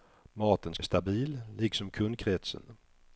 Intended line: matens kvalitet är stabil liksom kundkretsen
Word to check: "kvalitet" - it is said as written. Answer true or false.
false